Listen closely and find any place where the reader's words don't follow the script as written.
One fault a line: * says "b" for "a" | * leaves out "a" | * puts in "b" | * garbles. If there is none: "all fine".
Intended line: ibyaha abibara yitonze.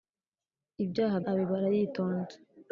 all fine